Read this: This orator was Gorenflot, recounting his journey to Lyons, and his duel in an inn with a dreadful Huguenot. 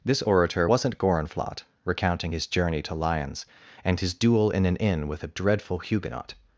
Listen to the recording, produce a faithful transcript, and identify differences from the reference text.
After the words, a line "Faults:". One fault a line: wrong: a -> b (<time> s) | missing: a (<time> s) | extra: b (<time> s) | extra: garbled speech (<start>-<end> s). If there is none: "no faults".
This orator wasn't Gorenflot, recounting his journey to Lyons, and his duel in an inn with a dreadful Huguenot.
Faults:
wrong: was -> wasn't (0.6 s)